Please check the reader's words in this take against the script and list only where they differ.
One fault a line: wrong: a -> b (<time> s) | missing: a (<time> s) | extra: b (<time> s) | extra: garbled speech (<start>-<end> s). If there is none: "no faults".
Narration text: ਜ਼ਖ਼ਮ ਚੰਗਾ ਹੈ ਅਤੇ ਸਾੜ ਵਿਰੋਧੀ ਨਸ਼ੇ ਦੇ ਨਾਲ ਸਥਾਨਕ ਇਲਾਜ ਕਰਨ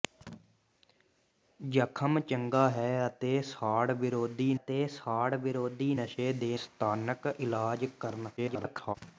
extra: ਅਤੇ ਸਾੜ ਵਿਰੋਧੀ (4.5 s)
missing: ਨਾਲ (6.6 s)
extra: garbled speech (8.4-9.0 s)